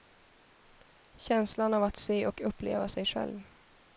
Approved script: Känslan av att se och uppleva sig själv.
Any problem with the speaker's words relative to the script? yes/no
no